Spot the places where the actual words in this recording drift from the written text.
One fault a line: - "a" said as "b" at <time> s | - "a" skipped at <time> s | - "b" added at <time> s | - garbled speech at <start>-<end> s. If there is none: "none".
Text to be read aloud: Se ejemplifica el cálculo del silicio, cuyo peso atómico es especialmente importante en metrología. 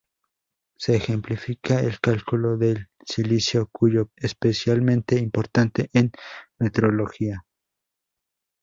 - "peso atómico es" skipped at 4.1 s